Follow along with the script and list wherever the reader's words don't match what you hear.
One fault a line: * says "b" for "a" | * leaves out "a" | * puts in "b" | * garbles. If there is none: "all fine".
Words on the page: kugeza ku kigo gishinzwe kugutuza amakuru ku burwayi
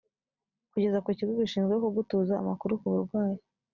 all fine